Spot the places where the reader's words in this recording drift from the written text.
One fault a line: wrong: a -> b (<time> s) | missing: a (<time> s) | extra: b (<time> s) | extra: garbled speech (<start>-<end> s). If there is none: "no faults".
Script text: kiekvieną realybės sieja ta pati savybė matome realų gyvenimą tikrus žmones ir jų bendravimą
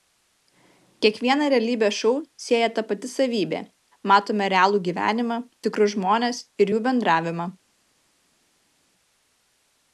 extra: šou (2.0 s)